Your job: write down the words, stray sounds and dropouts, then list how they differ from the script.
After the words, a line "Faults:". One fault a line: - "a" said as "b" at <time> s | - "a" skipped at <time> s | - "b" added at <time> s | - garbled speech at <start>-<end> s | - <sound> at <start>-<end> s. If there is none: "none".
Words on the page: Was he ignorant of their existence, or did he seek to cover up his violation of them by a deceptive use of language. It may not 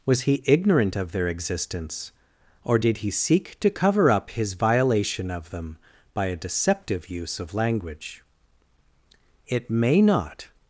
Was he ignorant of their existence, or did he seek to cover up his violation of them by a deceptive use of language. It may not
Faults:
none